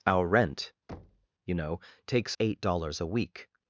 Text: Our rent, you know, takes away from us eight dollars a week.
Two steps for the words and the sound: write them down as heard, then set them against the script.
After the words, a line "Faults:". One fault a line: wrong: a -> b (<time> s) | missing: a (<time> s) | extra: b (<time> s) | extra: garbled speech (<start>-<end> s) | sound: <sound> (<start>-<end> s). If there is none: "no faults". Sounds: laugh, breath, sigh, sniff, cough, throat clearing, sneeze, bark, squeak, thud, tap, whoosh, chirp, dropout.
Our rent, you know, takes eight dollars a week.
Faults:
sound: thud (0.9-1.3 s)
missing: away from us (2.4 s)